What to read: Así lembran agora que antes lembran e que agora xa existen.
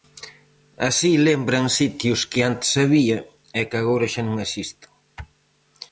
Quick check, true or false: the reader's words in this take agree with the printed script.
false